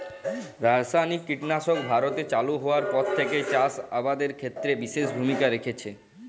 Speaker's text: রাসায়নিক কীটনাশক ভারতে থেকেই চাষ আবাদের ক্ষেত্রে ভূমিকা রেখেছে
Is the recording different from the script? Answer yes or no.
yes